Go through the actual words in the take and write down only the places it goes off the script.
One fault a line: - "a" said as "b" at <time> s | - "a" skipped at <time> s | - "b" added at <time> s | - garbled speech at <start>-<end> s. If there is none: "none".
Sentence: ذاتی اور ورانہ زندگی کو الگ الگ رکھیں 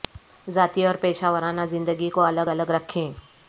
- "پیشہ" added at 0.9 s